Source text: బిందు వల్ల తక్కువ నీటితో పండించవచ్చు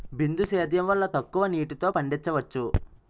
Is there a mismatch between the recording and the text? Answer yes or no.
yes